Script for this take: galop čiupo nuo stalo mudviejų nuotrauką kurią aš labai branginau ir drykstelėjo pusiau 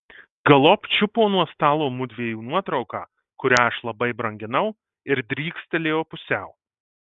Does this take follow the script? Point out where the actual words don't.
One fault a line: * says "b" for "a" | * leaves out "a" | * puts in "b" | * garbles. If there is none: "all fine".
all fine